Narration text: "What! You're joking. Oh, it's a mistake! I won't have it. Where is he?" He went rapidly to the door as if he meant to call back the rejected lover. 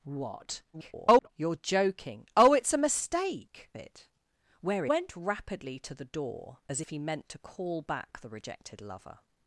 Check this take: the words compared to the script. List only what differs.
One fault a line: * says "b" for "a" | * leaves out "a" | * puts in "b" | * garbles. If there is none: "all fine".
* garbles
* leaves out "I won't have"
* leaves out "is he He"